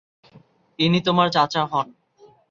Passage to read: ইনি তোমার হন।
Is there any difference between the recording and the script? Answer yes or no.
yes